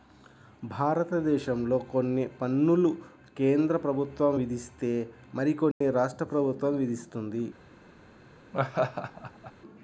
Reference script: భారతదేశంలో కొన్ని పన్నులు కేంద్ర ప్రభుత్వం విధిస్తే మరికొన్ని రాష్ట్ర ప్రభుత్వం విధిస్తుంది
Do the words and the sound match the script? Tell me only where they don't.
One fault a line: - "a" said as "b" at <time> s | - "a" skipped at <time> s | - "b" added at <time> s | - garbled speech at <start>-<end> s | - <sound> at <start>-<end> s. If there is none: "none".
- dropout at 5.7-5.8 s
- laugh at 8.5-9.5 s